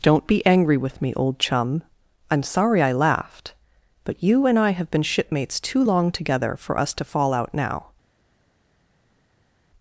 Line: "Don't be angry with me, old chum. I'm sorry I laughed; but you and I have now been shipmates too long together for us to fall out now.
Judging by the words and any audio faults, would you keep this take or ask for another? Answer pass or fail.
fail